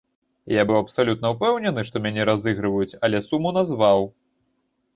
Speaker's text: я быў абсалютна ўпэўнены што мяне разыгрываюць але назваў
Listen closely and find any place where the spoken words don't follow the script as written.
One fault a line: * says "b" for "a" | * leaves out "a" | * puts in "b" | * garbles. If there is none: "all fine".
* puts in "суму"